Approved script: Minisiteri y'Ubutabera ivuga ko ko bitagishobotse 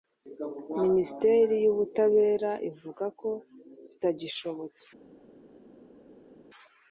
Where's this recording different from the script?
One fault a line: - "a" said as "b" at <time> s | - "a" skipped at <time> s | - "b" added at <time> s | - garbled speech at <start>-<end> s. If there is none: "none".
- "ko" skipped at 3.3 s